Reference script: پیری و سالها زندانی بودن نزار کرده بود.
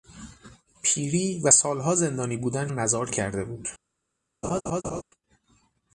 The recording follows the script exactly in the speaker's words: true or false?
true